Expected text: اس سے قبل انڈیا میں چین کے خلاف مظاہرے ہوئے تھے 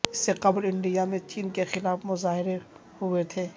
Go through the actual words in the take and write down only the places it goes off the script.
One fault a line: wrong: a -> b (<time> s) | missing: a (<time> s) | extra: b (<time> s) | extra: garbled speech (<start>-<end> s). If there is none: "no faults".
no faults